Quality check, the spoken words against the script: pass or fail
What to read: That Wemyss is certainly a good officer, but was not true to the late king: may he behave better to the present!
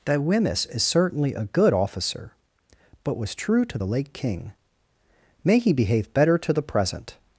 fail